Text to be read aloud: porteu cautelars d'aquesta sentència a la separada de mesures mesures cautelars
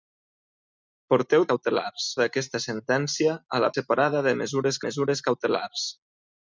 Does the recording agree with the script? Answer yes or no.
yes